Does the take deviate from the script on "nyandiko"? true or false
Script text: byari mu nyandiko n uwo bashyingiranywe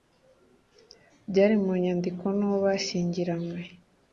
false